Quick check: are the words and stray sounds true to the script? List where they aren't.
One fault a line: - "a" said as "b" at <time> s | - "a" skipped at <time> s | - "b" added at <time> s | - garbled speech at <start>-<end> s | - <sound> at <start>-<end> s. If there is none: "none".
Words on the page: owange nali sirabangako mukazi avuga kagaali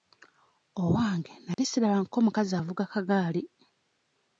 - dropout at 1.5-1.6 s